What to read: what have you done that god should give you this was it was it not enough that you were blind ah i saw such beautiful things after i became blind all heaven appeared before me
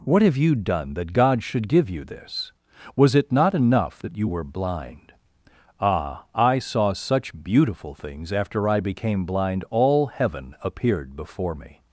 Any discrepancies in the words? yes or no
yes